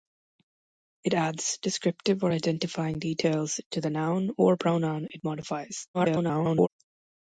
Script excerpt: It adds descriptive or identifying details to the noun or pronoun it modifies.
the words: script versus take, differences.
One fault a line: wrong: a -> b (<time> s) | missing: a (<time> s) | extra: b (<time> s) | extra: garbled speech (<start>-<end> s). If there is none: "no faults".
extra: garbled speech (5.9-6.7 s)